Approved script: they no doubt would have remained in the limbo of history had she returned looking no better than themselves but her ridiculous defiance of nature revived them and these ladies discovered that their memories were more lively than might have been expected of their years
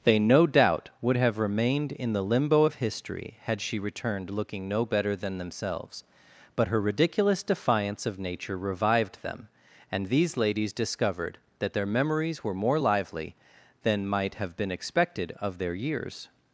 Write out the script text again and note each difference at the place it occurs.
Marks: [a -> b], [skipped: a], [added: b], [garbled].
they no doubt would have remained in the limbo of history had she returned looking no better than themselves but her ridiculous defiance of nature revived them and these ladies discovered that their memories were more lively than might have been expected of their years